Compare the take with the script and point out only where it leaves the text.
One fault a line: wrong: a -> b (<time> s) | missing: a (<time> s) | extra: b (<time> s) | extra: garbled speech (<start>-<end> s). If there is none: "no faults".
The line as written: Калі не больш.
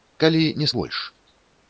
no faults